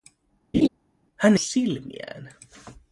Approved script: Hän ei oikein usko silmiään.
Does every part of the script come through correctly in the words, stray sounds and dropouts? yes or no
no